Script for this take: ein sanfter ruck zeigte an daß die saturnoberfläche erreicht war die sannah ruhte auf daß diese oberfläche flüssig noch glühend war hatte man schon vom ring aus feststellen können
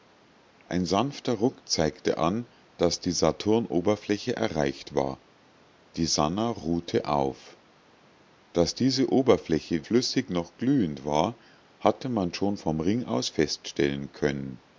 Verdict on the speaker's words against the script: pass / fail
pass